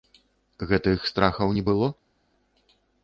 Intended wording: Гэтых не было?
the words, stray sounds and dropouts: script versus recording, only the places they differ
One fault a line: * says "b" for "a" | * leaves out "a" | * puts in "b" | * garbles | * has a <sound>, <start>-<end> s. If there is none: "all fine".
* puts in "страхаў"